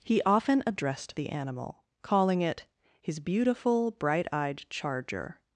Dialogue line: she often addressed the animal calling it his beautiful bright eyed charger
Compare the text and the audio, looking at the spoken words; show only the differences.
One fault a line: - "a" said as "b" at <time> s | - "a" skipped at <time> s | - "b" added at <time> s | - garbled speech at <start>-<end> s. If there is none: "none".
- "she" said as "he" at 0.0 s